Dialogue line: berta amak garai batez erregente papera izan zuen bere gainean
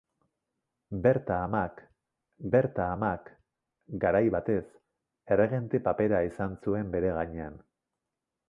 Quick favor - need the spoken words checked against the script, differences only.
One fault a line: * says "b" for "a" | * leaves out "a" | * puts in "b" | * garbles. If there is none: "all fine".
* puts in "berta amak"